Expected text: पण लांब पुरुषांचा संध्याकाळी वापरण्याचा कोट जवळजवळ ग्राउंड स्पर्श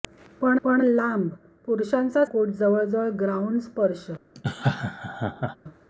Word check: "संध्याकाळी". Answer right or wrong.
wrong